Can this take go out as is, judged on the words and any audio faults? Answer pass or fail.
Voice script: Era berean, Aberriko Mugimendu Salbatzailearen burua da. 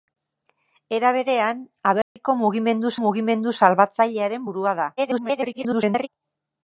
fail